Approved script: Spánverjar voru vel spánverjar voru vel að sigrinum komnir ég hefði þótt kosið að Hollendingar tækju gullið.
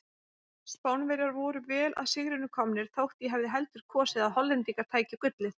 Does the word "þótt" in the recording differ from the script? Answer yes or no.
yes